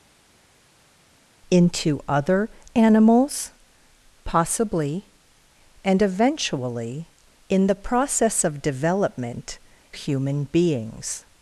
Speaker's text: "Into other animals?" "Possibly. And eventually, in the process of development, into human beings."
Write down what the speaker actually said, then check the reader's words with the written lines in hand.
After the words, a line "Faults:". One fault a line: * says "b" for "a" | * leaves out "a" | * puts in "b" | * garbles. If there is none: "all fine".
"Into other animals?" "Possibly. And eventually, in the process of development, human beings."
Faults:
* leaves out "into"